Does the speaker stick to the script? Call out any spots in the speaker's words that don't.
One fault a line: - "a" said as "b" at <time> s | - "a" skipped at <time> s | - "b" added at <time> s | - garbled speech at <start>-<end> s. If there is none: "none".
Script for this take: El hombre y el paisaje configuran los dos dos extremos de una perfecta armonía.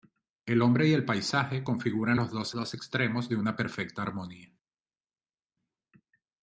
none